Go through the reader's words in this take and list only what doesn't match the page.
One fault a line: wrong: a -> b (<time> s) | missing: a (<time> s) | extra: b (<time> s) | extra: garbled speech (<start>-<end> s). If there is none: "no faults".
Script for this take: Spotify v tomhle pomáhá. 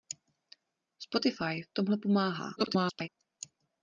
extra: garbled speech (2.6-3.1 s)